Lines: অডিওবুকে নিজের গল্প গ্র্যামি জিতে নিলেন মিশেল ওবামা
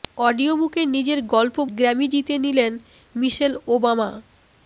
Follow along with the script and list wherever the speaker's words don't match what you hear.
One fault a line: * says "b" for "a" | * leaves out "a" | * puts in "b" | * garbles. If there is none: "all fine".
all fine